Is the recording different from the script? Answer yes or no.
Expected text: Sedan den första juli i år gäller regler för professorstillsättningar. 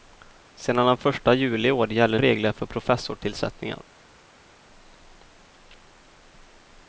no